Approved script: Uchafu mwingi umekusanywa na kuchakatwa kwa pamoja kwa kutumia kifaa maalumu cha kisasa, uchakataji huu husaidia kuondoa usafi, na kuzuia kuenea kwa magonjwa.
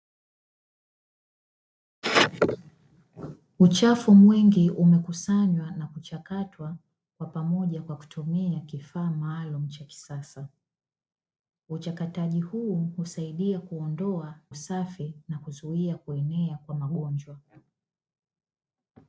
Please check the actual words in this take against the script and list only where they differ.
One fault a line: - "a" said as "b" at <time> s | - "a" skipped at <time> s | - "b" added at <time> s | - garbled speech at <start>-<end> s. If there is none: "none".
none